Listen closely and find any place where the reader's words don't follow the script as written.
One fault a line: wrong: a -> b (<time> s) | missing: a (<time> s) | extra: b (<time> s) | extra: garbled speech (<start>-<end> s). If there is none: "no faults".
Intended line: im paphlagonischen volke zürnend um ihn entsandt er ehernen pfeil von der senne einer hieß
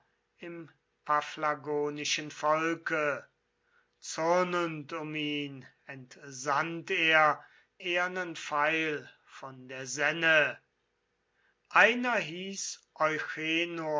no faults